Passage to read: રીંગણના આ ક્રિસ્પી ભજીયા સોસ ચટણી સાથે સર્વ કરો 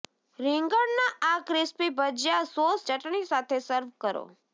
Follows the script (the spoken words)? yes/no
yes